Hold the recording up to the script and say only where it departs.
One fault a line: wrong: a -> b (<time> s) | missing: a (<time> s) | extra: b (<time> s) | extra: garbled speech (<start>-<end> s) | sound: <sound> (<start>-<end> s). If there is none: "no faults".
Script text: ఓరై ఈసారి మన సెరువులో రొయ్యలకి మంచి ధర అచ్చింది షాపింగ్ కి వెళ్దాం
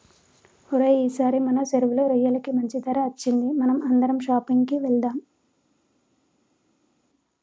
extra: మనం అందరం (3.5 s)